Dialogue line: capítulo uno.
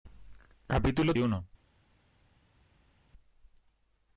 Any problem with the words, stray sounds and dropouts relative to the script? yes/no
no